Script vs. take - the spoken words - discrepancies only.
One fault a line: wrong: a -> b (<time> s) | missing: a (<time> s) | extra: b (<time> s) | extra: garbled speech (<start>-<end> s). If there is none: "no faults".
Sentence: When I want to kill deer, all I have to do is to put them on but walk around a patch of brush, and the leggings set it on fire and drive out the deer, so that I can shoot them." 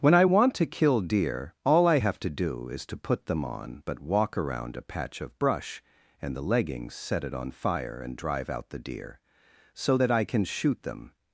no faults